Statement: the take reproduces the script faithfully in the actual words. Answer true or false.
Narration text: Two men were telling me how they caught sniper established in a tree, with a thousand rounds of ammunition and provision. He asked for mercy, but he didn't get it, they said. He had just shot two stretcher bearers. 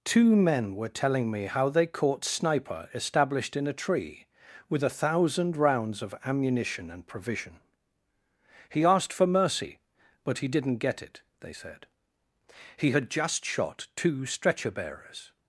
true